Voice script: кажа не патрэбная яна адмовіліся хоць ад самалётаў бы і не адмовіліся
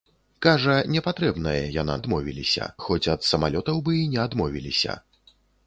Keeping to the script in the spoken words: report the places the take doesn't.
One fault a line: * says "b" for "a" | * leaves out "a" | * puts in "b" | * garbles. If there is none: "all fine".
all fine